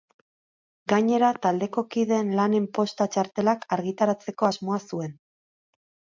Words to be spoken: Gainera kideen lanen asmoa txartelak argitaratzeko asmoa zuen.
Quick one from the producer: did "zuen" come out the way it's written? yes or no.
yes